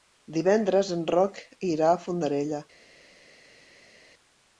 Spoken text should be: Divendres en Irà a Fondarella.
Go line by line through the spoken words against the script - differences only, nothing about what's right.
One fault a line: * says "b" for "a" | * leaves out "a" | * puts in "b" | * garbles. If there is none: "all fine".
* puts in "Roc"